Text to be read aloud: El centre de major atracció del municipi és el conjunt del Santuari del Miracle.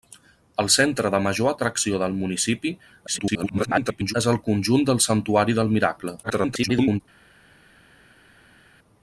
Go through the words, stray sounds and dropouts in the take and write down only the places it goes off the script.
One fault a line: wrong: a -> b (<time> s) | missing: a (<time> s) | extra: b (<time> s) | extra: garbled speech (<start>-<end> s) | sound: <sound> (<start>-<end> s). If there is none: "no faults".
extra: garbled speech (3.1-4.1 s)
extra: garbled speech (6.2-7.0 s)